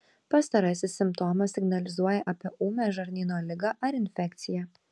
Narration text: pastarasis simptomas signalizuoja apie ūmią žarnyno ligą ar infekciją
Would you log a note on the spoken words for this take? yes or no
no